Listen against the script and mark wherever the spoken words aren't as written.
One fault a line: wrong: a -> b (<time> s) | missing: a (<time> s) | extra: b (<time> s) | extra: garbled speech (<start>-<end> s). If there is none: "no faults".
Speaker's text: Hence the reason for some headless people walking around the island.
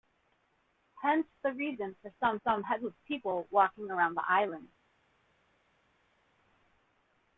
extra: some (2.4 s)